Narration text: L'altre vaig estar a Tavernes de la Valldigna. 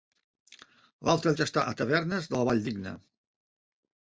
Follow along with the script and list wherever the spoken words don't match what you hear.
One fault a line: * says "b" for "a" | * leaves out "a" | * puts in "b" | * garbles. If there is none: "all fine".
all fine